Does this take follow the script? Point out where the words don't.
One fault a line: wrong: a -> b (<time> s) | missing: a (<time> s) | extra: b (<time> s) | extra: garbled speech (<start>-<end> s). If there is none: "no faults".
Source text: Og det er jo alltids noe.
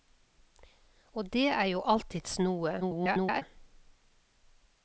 extra: garbled speech (2.8-3.4 s)